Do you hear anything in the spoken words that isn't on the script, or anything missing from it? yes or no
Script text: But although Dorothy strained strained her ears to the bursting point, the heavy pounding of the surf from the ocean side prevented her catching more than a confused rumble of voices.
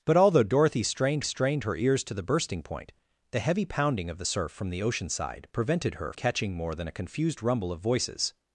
no